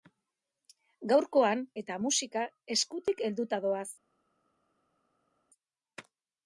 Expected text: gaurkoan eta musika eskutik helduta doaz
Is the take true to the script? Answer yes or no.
yes